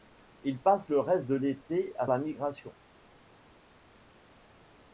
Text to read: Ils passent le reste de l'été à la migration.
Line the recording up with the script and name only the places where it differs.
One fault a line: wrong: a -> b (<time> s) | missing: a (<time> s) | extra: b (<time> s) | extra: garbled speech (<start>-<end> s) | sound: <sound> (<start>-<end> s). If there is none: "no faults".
no faults